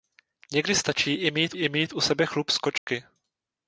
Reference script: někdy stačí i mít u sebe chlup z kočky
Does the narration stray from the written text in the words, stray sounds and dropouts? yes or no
yes